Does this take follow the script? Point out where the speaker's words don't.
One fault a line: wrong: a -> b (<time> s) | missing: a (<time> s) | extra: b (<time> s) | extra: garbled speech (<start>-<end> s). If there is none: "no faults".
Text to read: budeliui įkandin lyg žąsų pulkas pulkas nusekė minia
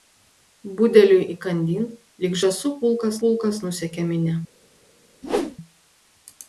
no faults